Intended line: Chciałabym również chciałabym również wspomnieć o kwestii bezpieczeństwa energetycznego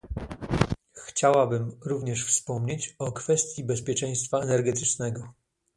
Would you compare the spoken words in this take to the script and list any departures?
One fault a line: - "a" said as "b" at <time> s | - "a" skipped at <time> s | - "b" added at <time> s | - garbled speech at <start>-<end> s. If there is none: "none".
- "chciałabym również" skipped at 2.2 s